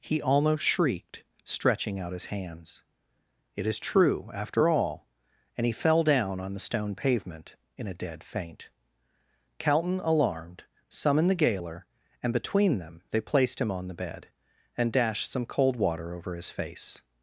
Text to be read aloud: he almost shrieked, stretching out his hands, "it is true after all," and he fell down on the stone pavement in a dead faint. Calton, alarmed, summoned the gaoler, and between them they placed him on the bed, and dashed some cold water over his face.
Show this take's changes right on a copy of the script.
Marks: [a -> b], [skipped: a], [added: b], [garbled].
he almost shrieked, stretching out his hands, "it is true after all," and he fell down on the stone pavement in a dead faint. Calton, alarmed, summoned the gaoler, and between them they placed him on the bed, and dashed some cold water over his face.